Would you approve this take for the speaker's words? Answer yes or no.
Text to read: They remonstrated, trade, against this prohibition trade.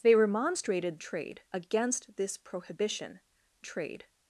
yes